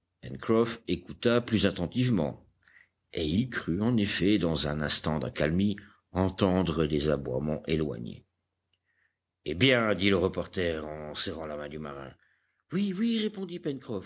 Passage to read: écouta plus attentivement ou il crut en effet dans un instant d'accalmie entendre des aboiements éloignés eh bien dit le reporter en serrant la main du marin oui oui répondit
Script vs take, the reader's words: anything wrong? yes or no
yes